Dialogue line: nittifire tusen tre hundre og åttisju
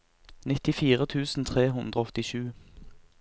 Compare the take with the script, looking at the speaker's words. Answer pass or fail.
pass